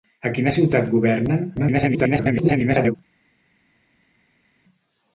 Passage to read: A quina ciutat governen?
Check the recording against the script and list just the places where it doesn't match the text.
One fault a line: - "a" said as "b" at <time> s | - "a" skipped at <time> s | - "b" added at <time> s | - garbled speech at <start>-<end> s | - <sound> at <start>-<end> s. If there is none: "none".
- garbled speech at 1.6-3.0 s